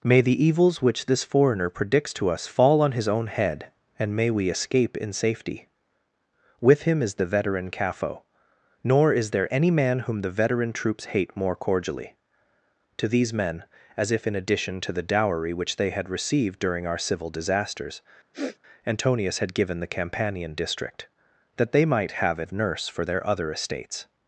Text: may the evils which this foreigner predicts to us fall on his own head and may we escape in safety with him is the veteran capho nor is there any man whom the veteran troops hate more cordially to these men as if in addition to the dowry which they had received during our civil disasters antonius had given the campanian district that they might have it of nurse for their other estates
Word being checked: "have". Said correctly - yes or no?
yes